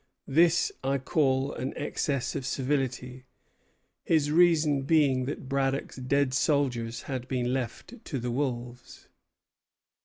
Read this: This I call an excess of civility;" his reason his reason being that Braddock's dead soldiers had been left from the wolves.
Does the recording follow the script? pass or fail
fail